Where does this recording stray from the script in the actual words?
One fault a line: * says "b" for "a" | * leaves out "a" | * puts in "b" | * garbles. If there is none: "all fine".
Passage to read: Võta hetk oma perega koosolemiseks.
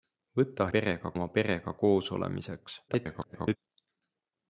* says "perega" for "hetk"
* garbles